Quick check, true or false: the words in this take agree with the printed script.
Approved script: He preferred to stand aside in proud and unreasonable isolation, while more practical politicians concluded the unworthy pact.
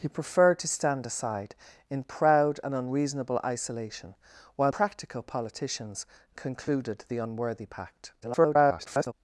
false